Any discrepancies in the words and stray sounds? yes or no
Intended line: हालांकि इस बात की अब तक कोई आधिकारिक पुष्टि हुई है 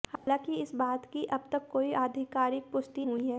yes